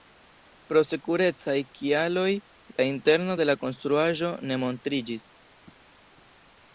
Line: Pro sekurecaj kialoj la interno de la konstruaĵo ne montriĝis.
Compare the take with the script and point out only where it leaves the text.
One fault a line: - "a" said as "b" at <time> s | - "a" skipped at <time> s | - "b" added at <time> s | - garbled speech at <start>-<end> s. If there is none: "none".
none